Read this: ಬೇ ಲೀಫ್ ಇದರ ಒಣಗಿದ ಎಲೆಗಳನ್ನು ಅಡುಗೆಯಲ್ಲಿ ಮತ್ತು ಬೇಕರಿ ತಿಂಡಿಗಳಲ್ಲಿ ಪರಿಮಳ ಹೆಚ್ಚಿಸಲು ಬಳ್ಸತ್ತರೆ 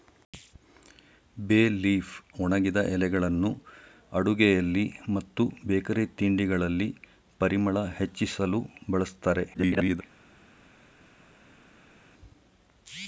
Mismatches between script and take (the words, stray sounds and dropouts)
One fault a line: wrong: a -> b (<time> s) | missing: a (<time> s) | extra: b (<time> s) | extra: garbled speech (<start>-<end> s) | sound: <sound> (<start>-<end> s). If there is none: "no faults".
missing: ಇದರ (2.1 s)
extra: garbled speech (9.5-10.0 s)